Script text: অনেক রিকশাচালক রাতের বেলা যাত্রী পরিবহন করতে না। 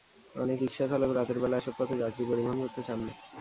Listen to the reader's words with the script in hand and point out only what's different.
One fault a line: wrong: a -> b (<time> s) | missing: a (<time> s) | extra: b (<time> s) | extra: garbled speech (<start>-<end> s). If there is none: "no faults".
extra: এসব পথে (1.6 s)
extra: চান (2.8 s)